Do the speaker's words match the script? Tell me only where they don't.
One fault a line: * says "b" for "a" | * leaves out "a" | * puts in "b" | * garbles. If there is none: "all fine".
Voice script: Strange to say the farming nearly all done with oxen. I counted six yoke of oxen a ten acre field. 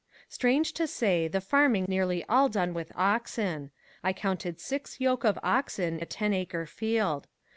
all fine